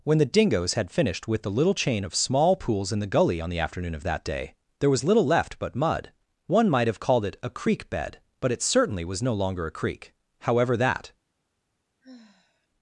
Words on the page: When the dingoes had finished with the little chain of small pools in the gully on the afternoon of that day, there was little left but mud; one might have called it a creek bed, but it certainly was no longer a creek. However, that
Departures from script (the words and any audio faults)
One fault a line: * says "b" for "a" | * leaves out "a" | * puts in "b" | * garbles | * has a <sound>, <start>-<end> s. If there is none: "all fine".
* has a sigh, 12.0-12.7 s